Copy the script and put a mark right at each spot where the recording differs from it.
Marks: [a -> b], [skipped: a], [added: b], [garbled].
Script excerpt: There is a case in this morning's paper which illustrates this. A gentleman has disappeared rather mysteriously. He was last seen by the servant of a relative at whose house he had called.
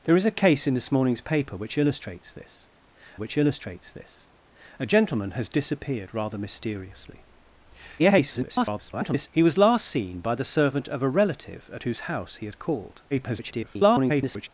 There is a case in this morning's paper which illustrates this. [added: which illustrates this] A gentleman has disappeared rather mysteriously. [garbled] He was last seen by the servant of a relative at whose house he had called. [garbled]